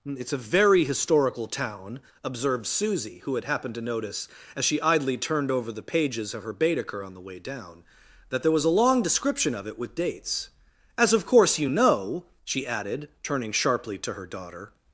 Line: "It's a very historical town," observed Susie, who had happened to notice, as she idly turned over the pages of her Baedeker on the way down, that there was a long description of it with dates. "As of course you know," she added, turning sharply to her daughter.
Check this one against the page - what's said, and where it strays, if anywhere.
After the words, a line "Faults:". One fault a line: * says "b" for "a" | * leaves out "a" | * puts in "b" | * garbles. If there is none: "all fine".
"It's a very historical town," observed Susie, who had happened to notice, as she idly turned over the pages of her Baedeker on the way down, that there was a long description of it with dates. "As of course you know," she added, turning sharply to her daughter.
Faults:
all fine